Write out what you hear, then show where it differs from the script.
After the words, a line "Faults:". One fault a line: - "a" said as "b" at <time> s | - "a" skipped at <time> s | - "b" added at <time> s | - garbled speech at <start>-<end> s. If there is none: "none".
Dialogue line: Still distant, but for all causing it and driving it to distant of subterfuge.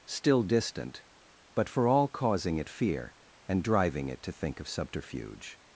Still distant, but for all causing it fear, and driving it to think of subterfuge.
Faults:
- "fear" added at 2.7 s
- "distant" said as "think" at 4.3 s